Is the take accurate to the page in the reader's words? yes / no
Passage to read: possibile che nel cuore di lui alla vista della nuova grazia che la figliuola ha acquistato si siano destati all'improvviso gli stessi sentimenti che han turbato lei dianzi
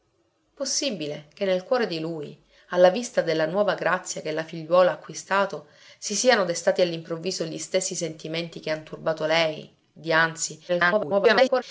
no